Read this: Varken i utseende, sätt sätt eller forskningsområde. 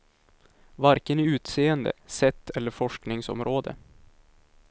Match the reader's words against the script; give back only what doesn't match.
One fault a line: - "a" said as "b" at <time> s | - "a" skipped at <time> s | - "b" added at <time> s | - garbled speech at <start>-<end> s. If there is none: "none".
- "sätt" skipped at 2.5 s